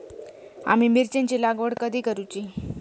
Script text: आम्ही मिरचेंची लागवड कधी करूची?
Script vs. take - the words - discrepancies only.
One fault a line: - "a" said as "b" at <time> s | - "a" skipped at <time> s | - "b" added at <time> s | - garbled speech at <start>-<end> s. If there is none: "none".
none